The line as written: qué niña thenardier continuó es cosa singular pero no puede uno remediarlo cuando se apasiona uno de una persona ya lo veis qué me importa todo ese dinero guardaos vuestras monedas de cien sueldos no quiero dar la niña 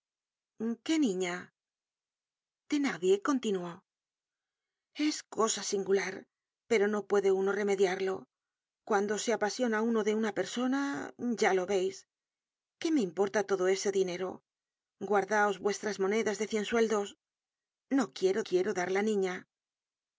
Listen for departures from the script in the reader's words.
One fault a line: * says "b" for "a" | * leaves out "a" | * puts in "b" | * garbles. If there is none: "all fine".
* puts in "quiero"